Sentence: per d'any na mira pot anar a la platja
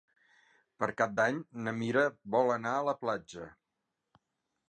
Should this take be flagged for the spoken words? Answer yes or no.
yes